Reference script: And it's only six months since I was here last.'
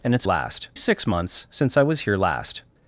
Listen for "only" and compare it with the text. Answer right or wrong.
wrong